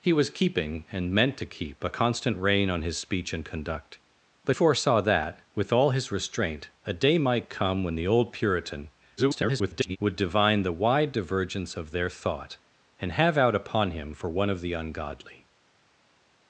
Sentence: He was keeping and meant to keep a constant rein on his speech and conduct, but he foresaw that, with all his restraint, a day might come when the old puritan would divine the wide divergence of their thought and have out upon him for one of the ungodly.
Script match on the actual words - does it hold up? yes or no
no